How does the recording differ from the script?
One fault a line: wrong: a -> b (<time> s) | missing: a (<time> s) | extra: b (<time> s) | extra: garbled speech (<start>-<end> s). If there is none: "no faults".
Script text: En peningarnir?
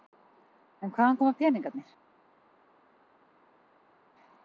extra: hvaðan koma (0.9 s)